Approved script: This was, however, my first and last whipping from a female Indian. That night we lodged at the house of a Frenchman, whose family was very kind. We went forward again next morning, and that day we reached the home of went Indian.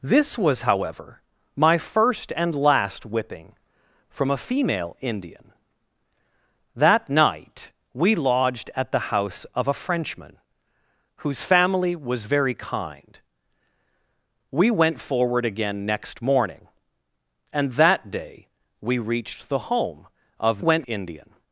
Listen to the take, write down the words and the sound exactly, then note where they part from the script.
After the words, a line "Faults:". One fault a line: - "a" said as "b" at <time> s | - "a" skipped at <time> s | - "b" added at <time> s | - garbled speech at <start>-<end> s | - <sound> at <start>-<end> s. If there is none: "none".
This was, however, my first and last whipping from a female Indian. That night we lodged at the house of a Frenchman, whose family was very kind. We went forward again next morning, and that day we reached the home of went Indian.
Faults:
none